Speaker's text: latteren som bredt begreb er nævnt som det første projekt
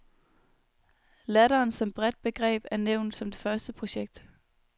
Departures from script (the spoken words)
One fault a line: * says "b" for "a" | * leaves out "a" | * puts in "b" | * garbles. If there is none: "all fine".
all fine